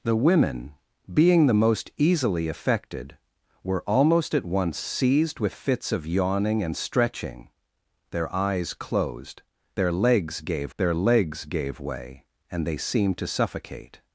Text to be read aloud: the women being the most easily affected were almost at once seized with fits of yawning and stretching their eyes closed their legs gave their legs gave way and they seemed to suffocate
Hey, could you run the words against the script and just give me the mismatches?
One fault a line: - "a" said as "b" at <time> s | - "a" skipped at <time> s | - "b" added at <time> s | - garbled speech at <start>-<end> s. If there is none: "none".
none